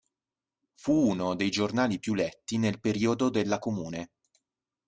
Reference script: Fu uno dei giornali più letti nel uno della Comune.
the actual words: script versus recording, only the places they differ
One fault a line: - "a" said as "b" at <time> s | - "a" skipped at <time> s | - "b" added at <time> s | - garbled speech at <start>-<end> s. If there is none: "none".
- "uno" said as "periodo" at 2.8 s